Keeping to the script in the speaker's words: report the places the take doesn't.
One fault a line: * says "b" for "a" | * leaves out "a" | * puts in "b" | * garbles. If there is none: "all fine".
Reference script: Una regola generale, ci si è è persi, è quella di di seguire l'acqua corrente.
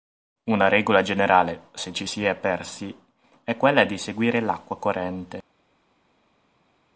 * puts in "se"
* leaves out "è"
* leaves out "di"